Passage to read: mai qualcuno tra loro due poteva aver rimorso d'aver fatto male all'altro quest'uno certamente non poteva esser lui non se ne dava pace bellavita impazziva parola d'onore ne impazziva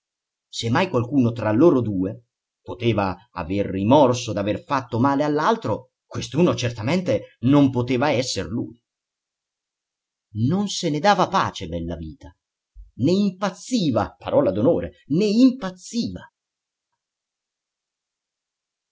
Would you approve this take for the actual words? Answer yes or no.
no